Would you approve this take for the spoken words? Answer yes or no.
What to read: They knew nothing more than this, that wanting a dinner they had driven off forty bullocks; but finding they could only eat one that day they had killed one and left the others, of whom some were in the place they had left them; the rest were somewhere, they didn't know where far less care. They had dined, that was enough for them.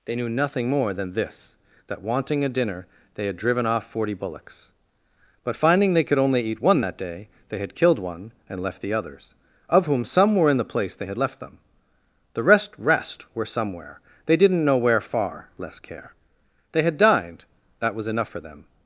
no